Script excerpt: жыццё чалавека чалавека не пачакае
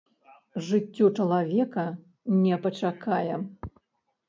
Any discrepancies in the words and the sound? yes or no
yes